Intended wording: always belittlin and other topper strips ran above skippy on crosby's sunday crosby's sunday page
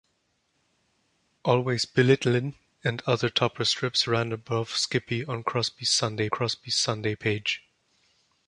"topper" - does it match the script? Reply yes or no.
yes